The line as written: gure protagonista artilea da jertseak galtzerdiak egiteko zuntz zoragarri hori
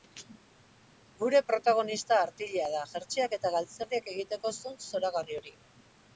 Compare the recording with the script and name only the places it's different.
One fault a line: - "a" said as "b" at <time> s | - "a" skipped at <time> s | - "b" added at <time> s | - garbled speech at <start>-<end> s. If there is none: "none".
- "eta" added at 3.4 s